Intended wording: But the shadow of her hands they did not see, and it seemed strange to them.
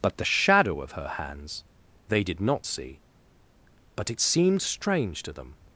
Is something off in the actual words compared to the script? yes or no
yes